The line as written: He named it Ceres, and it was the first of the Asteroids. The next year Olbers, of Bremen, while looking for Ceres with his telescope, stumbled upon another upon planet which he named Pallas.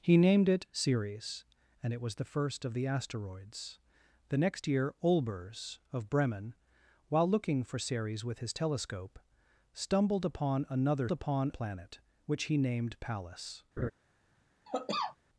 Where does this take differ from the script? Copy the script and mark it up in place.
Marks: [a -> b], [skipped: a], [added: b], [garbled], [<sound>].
He named it Ceres, and it was the first of the Asteroids. The next year Olbers, of Bremen, while looking for Ceres with his telescope, stumbled upon another upon planet which he named Pallas. [laugh] [cough]